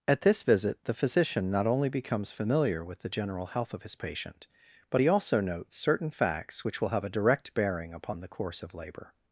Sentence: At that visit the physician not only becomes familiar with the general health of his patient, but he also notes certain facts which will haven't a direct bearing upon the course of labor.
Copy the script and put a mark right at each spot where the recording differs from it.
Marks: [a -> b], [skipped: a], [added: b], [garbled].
At [that -> this] visit the physician not only becomes familiar with the general health of his patient, but he also notes certain facts which will [haven't -> have] a direct bearing upon the course of labor.